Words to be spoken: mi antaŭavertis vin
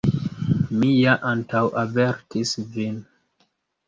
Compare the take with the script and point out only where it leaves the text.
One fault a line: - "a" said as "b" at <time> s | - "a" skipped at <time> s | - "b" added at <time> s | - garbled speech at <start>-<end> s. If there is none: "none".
- "ja" added at 0.9 s